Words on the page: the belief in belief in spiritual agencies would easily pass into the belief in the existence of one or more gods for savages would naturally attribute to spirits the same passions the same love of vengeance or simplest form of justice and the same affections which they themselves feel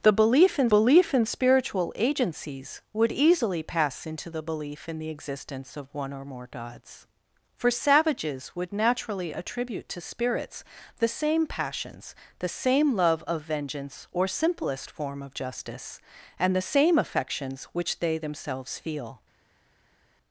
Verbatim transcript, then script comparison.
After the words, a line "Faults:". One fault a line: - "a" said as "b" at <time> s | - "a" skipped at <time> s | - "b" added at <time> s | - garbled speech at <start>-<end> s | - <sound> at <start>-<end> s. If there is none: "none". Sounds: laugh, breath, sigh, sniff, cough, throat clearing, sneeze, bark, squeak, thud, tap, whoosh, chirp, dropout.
the belief in belief in spiritual agencies would easily pass into the belief in the existence of one or more gods for savages would naturally attribute to spirits the same passions the same love of vengeance or simplest form of justice and the same affections which they themselves feel
Faults:
none